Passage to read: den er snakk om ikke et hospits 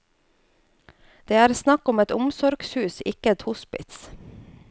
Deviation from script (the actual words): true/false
true